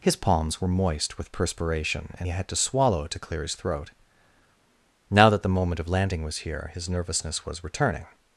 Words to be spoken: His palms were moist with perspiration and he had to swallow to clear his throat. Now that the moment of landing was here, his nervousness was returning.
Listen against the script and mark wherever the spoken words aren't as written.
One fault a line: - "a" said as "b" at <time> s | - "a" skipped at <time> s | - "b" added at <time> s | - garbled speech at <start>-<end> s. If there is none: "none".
- "he" skipped at 2.3 s